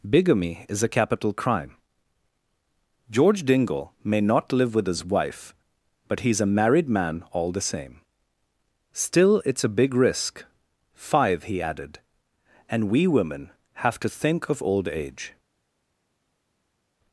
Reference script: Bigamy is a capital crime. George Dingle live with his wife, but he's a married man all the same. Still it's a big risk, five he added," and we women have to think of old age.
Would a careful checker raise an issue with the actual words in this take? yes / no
yes